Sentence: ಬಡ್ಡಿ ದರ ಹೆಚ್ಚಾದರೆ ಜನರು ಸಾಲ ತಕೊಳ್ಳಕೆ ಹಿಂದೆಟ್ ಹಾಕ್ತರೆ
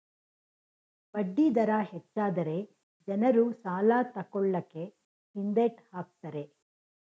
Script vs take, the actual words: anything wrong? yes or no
no